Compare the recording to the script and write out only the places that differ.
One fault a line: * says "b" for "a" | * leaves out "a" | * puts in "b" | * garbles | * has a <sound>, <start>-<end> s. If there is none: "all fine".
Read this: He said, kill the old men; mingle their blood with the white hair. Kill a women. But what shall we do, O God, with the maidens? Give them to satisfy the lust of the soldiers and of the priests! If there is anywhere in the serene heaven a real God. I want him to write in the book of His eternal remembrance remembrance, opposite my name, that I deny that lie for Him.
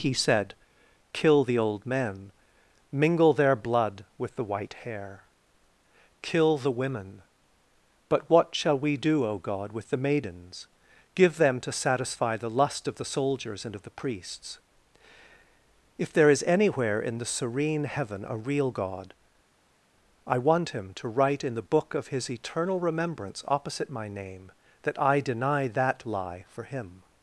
* says "the" for "a"
* leaves out "remembrance"